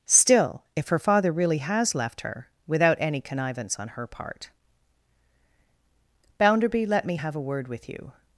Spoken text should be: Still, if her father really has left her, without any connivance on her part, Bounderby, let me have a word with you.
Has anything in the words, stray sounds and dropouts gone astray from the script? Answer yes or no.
no